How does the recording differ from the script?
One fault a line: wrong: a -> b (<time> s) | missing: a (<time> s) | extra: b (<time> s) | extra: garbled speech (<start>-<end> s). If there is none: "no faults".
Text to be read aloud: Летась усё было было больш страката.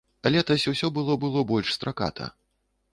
no faults